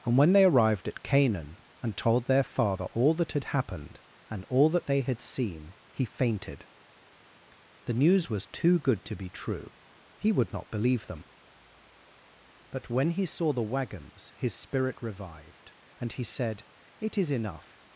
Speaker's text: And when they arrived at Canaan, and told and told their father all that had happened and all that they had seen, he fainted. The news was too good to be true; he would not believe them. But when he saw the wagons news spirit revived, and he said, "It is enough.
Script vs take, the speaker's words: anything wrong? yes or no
yes